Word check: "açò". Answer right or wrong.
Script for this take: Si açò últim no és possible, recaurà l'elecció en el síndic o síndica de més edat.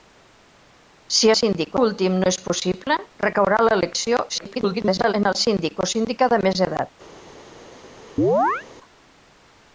wrong